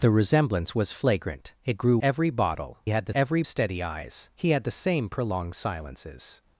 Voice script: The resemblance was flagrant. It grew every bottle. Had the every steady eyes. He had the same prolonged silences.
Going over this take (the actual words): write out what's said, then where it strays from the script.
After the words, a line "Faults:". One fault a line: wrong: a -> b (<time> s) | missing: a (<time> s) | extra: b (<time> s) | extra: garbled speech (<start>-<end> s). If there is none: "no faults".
The resemblance was flagrant. It grew every bottle. Had the every steady eyes. He had the same prolonged silences.
Faults:
no faults